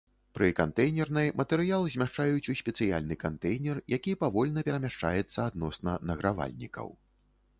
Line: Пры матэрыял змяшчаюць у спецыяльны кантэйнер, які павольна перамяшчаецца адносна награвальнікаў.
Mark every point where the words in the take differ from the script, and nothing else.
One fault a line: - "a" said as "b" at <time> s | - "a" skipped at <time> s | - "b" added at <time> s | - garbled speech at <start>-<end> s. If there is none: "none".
- "кантэйнернай" added at 0.6 s